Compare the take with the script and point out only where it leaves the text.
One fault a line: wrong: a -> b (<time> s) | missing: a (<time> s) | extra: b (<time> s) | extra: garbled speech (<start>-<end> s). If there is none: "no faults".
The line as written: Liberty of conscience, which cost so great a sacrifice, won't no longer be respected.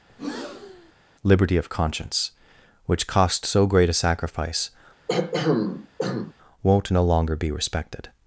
no faults